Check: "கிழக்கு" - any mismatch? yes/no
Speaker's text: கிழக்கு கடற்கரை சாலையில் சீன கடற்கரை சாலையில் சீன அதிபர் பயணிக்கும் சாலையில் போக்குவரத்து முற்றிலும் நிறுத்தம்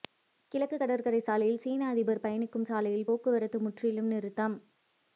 no